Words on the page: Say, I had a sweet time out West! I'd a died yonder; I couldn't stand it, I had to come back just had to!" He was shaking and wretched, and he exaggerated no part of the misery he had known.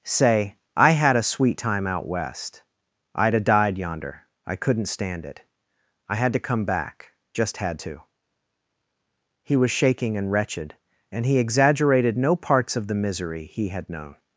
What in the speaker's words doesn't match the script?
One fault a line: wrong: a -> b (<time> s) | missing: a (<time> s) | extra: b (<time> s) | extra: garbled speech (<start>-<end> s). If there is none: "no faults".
wrong: part -> parts (12.4 s)